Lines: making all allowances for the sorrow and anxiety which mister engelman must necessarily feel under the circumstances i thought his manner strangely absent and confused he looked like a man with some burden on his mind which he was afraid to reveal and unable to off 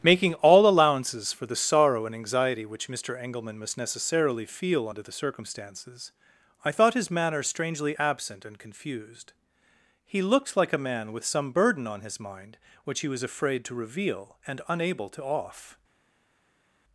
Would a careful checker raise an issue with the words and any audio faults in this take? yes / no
no